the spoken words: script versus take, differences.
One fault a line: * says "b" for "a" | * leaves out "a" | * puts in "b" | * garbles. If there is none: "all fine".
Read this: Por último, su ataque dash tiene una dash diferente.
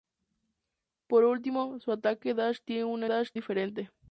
all fine